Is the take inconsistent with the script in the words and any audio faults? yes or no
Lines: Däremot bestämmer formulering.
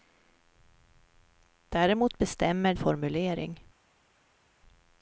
no